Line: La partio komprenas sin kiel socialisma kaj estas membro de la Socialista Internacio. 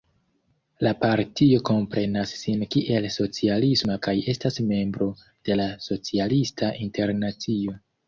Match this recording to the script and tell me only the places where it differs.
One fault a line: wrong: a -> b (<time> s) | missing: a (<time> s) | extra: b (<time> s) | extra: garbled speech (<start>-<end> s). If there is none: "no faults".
no faults